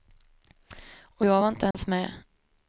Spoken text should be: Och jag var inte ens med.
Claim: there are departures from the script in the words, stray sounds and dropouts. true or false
true